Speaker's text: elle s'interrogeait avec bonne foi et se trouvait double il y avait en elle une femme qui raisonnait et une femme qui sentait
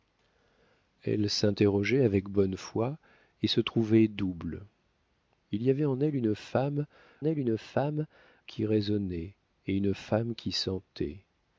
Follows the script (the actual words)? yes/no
no